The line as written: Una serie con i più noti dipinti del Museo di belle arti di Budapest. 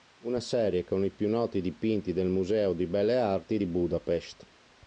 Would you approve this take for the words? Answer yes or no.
yes